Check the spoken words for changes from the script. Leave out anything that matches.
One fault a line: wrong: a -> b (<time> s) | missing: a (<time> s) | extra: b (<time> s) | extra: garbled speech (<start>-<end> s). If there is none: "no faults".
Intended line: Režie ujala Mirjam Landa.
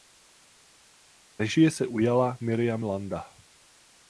extra: se (1.7 s)